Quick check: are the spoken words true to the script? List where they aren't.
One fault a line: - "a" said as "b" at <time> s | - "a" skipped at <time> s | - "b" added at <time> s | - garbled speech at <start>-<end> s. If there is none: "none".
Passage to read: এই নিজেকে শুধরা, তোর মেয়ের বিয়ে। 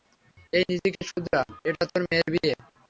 - "এটা" added at 1.6 s